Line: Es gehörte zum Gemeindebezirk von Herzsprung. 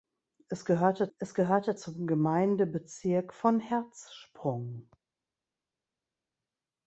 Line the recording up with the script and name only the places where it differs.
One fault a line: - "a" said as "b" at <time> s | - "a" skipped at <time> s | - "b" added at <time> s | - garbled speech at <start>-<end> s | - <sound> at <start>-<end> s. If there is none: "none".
- "es gehörte" added at 1.2 s